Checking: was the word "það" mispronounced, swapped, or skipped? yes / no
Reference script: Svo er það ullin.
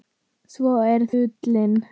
yes